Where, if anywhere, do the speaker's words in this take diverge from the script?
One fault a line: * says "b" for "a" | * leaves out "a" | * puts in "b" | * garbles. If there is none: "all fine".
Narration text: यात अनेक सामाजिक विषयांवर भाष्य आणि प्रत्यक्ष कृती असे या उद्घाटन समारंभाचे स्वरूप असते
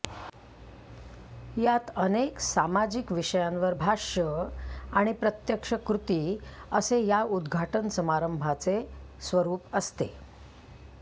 all fine